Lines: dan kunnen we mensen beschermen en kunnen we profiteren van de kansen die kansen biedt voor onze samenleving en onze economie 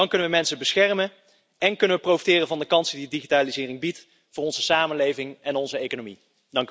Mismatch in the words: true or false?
true